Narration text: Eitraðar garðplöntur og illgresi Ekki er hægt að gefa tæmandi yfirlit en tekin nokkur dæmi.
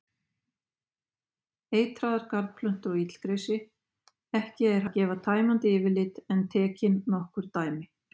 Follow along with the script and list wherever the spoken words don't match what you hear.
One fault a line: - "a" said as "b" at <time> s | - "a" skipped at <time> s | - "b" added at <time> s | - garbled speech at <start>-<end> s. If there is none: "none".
- "hægt" skipped at 4.9 s